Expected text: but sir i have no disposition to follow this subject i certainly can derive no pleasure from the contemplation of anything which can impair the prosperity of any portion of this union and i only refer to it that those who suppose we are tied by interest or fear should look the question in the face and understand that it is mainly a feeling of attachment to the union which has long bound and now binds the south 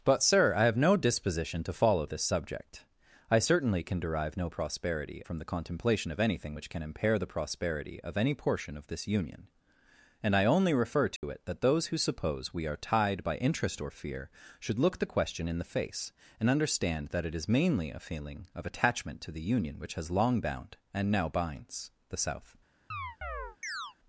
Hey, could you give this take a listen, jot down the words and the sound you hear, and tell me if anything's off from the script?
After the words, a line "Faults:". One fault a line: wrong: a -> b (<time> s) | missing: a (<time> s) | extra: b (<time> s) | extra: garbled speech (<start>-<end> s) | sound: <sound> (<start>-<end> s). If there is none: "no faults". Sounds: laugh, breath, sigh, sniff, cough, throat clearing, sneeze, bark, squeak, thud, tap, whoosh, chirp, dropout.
but sir i have no disposition to follow this subject i certainly can derive no prosperity from the contemplation of anything which can impair the prosperity of any portion of this union and i only refer to it that those who suppose we are tied by interest or fear should look the question in the face and understand that it is mainly a feeling of attachment to the union which has long bound and now binds the south
Faults:
wrong: pleasure -> prosperity (4.5 s)
sound: dropout (11.2-11.2 s)
sound: chirp (22.9-23.9 s)